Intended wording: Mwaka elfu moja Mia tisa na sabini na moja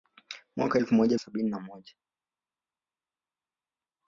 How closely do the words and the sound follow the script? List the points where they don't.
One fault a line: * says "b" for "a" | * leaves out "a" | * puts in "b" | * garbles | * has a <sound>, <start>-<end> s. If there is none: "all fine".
* leaves out "Mia tisa na"